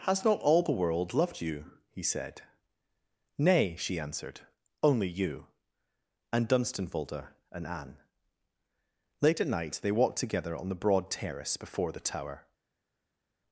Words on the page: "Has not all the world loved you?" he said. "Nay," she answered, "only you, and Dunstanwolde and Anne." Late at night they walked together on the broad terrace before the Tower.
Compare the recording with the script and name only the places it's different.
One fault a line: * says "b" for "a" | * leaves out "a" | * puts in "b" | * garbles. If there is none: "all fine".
all fine